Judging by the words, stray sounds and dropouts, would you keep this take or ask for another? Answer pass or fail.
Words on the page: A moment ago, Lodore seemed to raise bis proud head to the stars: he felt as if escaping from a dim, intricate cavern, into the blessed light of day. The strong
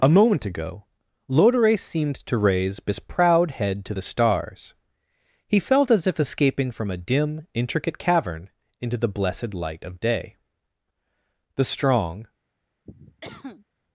fail